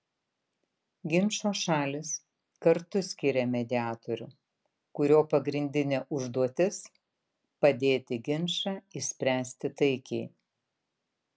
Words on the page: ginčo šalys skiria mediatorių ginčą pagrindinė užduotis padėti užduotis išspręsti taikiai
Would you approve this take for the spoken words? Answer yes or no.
no